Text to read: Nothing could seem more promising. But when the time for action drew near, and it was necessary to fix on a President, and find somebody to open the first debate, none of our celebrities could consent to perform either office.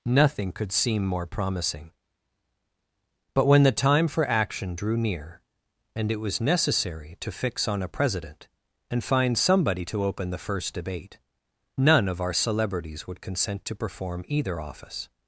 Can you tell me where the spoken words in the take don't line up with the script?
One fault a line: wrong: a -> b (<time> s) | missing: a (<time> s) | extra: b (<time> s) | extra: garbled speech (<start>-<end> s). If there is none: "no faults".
wrong: could -> would (13.1 s)